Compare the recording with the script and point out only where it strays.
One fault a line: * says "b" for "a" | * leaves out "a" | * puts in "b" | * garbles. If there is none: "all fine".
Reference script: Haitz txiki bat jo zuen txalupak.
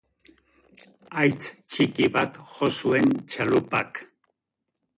all fine